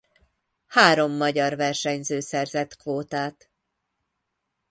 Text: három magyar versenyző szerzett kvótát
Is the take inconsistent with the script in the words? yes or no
no